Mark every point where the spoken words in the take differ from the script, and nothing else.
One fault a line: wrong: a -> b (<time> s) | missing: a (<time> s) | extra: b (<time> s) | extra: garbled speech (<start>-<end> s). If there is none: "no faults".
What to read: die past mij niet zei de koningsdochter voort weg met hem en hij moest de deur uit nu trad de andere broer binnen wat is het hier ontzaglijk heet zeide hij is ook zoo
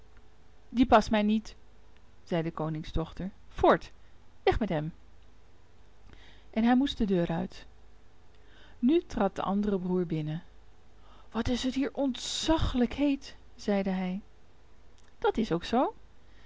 extra: dat (15.2 s)